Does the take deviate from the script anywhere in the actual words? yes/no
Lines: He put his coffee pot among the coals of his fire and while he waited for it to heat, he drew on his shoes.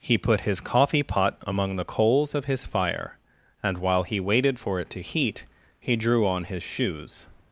no